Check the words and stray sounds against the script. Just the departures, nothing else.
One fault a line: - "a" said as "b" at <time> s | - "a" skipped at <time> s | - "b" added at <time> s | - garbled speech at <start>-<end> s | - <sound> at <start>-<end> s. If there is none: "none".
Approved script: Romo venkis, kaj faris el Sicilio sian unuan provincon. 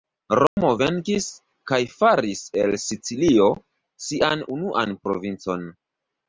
- dropout at 0.5-0.6 s